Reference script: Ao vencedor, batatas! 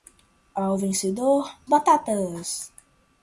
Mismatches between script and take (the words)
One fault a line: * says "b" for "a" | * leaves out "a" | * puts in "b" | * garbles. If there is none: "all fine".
all fine